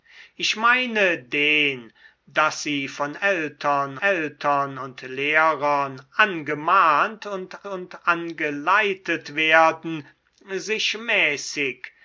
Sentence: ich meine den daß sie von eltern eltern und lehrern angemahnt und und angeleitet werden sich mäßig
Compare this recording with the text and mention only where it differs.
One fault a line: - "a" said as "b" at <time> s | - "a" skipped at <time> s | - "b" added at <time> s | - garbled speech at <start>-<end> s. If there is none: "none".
none